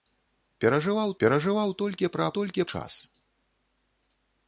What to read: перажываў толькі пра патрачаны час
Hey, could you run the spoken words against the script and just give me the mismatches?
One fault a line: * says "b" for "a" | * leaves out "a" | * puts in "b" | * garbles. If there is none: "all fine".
* puts in "перажываў"
* says "толькі" for "патрачаны"